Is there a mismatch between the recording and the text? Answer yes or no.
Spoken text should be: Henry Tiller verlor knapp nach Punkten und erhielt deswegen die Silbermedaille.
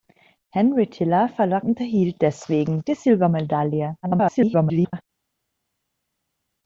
yes